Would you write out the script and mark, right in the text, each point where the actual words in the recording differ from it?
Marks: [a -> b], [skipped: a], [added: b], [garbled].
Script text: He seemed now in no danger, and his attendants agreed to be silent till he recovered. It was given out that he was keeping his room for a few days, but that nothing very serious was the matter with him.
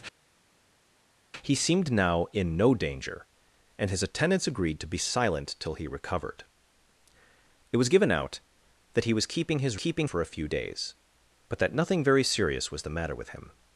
He seemed now in no danger, and his attendants agreed to be silent till he recovered. It was given out that he was keeping his [room -> keeping] for a few days, but that nothing very serious was the matter with him.